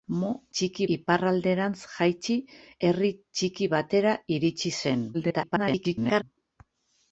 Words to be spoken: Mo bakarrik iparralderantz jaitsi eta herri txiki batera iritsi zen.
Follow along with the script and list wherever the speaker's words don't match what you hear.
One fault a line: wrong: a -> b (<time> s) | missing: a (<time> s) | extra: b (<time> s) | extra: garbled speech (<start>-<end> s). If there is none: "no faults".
wrong: bakarrik -> txiki (0.6 s)
missing: eta (2.4 s)
extra: garbled speech (5.1-6.2 s)